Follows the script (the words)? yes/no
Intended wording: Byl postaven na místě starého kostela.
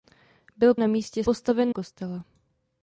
no